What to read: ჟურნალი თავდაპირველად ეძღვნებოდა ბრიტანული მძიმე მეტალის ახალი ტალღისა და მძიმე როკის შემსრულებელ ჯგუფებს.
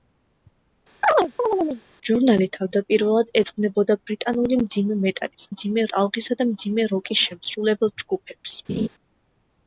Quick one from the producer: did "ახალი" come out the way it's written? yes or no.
no